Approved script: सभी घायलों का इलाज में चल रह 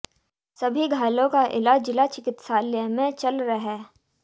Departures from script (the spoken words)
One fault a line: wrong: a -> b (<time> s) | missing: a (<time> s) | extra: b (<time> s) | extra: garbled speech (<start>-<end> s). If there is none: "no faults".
extra: जिला चिकित्सालय (1.9 s)